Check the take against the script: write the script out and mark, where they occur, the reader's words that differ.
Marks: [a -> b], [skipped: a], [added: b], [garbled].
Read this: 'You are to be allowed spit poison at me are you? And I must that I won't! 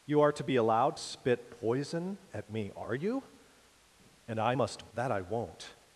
'You are to be allowed spit poison at me are you? And I must that I won't!